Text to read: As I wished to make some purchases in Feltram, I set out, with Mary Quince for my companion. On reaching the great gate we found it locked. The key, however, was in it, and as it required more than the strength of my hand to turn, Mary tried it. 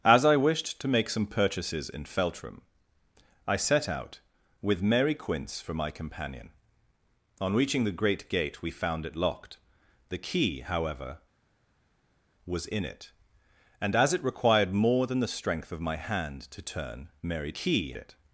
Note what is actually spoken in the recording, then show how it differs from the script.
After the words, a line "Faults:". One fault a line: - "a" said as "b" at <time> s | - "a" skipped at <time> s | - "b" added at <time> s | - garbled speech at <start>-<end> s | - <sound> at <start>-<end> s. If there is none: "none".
As I wished to make some purchases in Feltram, I set out, with Mary Quince for my companion. On reaching the great gate we found it locked. The key, however, was in it, and as it required more than the strength of my hand to turn, Mary key it.
Faults:
- "tried" said as "key" at 17.5 s